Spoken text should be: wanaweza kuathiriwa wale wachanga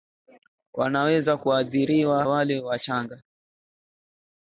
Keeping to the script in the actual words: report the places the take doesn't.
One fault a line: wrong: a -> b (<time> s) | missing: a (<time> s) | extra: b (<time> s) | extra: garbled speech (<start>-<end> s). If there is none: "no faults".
no faults